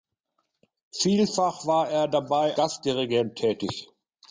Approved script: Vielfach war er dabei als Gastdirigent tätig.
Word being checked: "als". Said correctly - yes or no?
no